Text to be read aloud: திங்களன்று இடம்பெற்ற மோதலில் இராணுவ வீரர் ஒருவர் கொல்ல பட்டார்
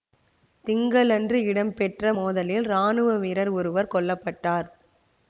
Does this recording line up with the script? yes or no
yes